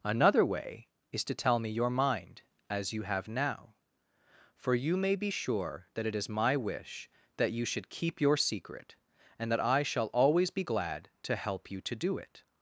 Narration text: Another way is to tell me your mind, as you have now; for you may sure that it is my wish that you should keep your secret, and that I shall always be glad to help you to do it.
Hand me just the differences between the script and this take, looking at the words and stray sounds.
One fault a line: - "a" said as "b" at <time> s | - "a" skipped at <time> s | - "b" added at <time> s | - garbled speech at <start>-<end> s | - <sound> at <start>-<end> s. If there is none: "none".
- "be" added at 5.2 s